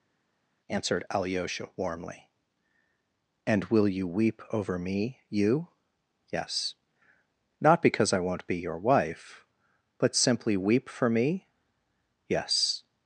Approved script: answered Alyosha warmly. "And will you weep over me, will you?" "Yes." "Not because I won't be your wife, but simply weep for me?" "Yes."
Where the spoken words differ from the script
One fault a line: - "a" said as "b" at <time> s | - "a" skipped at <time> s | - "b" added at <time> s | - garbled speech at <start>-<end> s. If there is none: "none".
- "will" skipped at 5.2 s